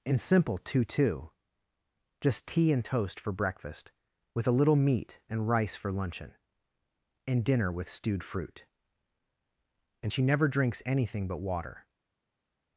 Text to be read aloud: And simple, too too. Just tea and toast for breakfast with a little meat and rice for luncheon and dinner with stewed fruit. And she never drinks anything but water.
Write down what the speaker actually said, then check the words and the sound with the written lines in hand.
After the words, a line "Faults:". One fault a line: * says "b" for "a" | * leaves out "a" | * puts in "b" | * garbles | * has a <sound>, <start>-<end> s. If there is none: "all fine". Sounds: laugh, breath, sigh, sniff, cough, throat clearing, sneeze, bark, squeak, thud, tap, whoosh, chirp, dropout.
And simple, too too. Just tea and toast for breakfast with a little meat and rice for luncheon and dinner with stewed fruit. And she never drinks anything but water.
Faults:
all fine